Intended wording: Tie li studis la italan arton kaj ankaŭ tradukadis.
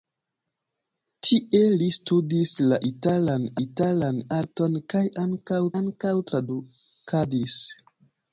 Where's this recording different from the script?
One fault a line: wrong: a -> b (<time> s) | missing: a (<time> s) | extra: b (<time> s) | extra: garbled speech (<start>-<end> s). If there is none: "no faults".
extra: italan (3.7 s)
extra: ankaŭ (5.8 s)